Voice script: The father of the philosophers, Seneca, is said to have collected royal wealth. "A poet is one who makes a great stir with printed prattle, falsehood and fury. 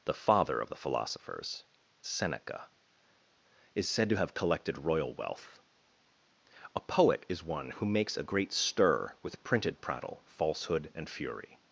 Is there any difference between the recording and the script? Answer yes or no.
no